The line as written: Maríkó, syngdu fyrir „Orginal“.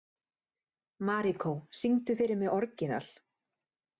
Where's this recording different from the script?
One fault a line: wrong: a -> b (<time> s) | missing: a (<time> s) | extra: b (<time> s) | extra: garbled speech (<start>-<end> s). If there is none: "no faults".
extra: mig (2.4 s)